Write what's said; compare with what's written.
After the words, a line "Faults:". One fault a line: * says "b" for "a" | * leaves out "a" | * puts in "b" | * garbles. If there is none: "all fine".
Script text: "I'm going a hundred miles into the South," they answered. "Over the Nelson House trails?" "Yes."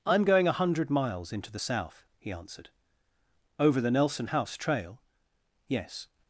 "I'm going a hundred miles into the South," he answered. "Over the Nelson House trail?" "Yes."
Faults:
* says "he" for "they"
* says "trail" for "trails"